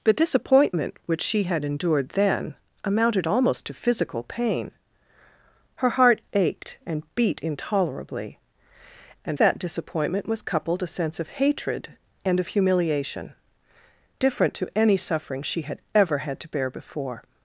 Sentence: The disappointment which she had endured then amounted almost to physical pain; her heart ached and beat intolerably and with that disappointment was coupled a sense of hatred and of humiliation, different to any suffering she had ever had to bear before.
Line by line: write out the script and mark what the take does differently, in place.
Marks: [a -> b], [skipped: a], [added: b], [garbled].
The disappointment which she had endured then amounted almost to physical pain; her heart ached and beat intolerably and [skipped: with] that disappointment was coupled a sense of hatred and of humiliation, different to any suffering she had ever had to bear before.